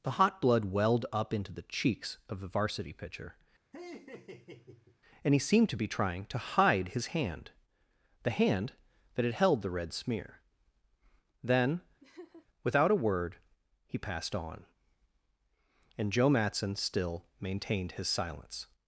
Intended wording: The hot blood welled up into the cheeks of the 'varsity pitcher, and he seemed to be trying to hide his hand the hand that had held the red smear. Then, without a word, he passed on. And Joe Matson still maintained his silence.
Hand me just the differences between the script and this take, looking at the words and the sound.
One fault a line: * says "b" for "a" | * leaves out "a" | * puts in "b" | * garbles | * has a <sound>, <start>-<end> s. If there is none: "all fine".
* has a laugh, 3.7-5.0 s
* has a laugh, 12.0-12.5 s